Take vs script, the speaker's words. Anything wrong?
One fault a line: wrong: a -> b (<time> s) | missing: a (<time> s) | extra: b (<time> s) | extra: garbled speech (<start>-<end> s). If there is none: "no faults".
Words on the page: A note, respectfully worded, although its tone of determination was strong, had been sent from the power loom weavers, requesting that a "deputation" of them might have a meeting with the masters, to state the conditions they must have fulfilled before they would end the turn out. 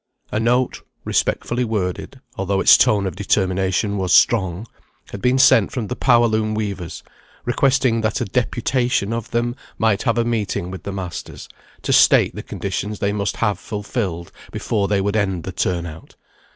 no faults